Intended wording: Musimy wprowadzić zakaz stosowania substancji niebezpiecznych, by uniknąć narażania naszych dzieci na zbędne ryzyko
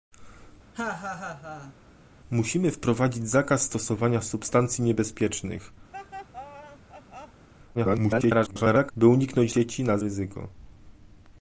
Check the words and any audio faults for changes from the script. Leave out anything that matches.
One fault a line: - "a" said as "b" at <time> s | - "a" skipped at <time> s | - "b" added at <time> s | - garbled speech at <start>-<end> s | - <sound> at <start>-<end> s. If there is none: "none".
- laugh at 0.7-1.7 s
- laugh at 5.9-7.5 s
- garbled speech at 7.7-8.9 s
- "narażania naszych" skipped at 9.5 s
- "zbędne" skipped at 10.0 s